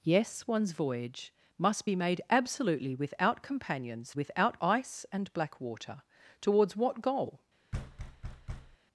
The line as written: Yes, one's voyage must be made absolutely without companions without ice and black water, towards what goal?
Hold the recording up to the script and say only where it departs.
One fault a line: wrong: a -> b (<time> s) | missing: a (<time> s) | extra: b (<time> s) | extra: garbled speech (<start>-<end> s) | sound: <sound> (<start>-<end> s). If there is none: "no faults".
sound: thud (7.7-8.8 s)